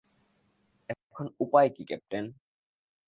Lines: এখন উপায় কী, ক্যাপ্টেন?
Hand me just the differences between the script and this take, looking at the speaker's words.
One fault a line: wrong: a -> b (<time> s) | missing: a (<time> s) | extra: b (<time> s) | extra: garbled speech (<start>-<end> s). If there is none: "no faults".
no faults